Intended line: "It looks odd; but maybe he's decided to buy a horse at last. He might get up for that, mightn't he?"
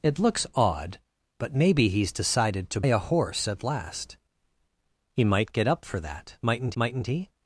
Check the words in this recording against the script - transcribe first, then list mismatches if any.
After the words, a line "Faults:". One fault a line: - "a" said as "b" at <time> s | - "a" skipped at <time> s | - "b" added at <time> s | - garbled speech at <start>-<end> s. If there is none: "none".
"It looks odd; but maybe he's decided to a horse at last. He might get up for that, mightn't mightn't he?"
Faults:
- "buy" skipped at 2.8 s
- "mightn't" added at 6.7 s